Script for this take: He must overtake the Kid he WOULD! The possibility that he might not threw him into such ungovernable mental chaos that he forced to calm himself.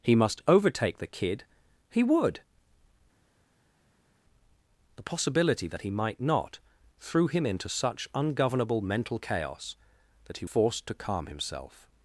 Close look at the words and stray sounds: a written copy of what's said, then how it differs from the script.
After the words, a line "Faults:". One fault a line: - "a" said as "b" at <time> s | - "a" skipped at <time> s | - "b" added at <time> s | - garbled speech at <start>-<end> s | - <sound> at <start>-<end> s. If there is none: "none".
He must overtake the Kid he WOULD! The possibility that he might not threw him into such ungovernable mental chaos that he forced to calm himself.
Faults:
none